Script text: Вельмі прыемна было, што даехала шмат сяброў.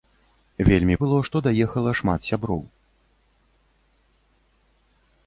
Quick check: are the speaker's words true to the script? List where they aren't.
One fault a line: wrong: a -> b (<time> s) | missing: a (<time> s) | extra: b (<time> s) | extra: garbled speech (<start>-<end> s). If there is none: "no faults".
missing: прыемна (0.9 s)